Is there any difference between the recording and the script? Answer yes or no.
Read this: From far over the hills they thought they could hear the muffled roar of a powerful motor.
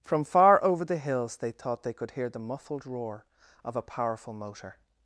no